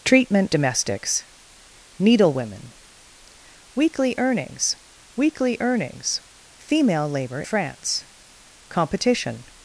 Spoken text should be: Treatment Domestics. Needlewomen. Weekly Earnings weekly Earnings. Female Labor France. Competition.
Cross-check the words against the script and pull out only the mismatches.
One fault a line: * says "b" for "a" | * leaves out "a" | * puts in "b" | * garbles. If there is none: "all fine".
all fine